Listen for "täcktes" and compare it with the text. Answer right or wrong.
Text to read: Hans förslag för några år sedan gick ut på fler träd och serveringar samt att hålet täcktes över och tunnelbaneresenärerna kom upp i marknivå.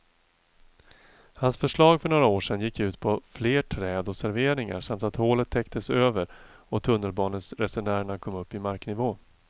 right